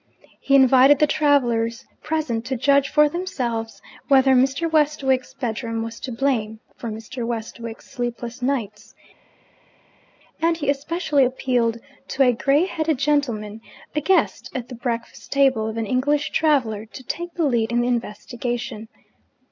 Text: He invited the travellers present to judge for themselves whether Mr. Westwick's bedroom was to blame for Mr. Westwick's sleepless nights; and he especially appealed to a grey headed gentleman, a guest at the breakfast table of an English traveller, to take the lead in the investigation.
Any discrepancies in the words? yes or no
no